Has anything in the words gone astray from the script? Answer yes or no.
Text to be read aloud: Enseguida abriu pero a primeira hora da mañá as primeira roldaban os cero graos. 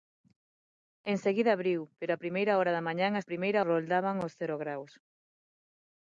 no